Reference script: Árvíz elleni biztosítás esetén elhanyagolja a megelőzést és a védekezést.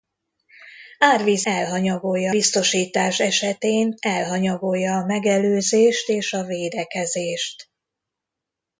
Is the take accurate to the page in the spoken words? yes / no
no